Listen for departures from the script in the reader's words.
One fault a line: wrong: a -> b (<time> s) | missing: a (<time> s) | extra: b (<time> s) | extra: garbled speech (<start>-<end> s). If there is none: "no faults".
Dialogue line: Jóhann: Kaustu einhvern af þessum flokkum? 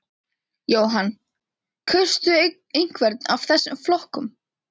no faults